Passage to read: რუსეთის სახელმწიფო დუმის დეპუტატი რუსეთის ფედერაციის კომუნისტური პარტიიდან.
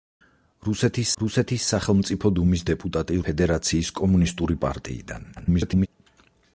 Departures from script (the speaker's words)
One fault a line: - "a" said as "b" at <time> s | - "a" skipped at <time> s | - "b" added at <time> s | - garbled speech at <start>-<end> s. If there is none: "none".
- "რუსეთის" added at 1.2 s
- "რუსეთის" skipped at 3.2 s
- garbled speech at 5.3-5.9 s